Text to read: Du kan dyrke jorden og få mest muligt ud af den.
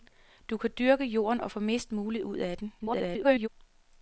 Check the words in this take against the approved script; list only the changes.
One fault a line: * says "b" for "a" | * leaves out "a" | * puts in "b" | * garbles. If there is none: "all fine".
* garbles